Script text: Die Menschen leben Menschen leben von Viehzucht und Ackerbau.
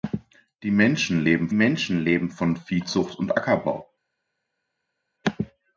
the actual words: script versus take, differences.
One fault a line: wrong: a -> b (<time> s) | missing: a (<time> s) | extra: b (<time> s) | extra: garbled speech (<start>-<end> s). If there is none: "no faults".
no faults